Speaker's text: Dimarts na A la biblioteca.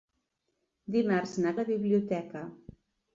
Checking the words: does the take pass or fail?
pass